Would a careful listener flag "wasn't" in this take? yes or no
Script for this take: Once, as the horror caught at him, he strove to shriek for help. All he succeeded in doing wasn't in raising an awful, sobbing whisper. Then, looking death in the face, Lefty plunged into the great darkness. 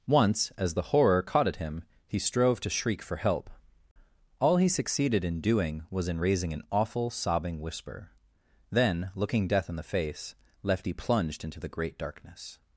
yes